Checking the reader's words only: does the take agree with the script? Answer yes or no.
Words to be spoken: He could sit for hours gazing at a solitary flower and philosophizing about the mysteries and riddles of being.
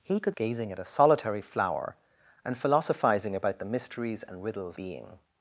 no